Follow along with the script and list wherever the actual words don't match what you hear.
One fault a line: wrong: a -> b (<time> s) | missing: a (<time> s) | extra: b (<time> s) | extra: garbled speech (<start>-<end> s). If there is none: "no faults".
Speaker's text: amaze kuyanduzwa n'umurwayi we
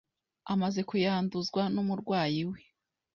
no faults